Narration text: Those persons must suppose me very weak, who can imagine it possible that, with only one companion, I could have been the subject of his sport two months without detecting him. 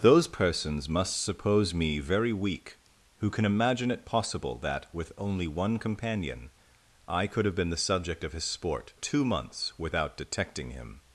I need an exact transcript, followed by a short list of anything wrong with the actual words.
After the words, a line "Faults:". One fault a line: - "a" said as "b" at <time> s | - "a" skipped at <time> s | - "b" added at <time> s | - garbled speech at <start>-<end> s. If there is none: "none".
Those persons must suppose me very weak, who can imagine it possible that, with only one companion, I could have been the subject of his sport two months without detecting him.
Faults:
none